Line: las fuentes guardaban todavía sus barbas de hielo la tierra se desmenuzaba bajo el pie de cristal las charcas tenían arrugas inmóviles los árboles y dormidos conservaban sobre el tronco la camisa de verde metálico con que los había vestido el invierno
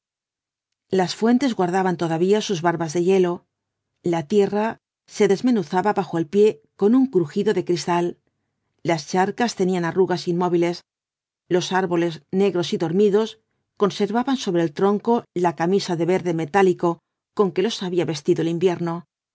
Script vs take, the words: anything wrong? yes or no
yes